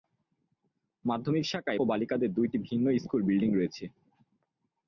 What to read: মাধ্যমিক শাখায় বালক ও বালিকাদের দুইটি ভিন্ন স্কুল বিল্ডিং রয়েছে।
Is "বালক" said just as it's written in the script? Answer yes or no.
no